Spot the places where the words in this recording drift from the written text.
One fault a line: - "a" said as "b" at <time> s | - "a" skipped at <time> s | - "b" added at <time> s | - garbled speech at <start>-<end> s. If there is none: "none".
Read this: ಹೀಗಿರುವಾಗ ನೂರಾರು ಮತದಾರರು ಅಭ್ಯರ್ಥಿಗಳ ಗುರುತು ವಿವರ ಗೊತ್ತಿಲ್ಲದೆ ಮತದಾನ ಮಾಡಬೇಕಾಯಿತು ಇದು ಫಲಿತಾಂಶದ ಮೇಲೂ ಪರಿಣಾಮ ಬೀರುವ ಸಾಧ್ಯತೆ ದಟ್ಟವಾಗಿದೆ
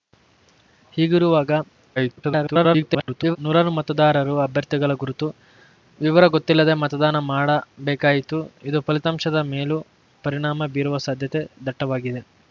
- garbled speech at 2.0-3.4 s